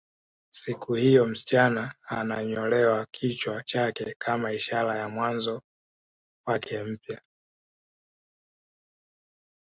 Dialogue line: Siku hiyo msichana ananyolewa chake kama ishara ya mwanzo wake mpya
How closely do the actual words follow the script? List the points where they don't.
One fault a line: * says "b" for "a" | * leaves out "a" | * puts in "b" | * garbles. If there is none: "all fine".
* puts in "kichwa"